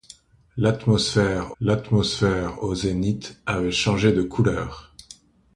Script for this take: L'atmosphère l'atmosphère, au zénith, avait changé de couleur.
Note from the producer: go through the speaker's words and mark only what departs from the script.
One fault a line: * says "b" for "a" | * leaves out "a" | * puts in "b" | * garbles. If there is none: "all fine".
all fine